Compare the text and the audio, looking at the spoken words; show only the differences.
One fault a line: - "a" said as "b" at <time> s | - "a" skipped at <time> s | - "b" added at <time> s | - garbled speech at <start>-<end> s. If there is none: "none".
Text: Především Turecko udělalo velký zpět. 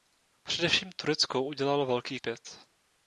none